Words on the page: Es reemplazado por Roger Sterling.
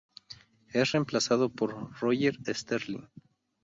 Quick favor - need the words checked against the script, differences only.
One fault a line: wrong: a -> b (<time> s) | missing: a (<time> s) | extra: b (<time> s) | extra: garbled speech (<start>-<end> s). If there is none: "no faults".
no faults